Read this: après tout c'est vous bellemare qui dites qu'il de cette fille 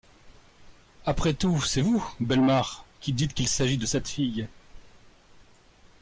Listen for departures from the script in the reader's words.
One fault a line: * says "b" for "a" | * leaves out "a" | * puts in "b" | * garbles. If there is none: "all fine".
* puts in "s'agit"